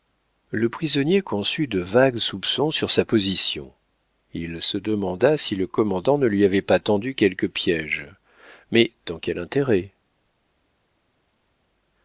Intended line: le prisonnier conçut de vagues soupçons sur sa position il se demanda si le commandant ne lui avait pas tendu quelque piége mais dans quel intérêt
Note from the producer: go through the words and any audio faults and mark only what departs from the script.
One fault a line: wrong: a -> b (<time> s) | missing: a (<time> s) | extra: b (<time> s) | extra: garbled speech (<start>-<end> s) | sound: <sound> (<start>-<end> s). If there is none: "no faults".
no faults